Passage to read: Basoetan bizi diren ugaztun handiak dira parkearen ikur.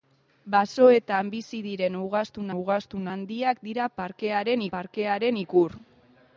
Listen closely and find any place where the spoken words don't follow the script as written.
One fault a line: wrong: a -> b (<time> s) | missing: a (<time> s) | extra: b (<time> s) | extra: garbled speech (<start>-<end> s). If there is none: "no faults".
extra: ugaztun (2.6 s)
extra: parkearen (4.8 s)